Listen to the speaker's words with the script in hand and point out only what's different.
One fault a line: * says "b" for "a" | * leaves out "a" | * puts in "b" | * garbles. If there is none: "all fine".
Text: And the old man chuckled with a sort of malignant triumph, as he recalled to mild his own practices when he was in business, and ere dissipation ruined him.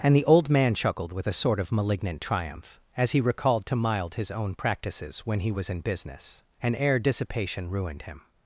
all fine